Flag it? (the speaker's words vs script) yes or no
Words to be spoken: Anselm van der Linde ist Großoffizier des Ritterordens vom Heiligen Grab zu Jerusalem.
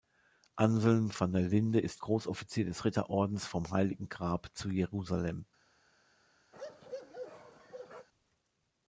no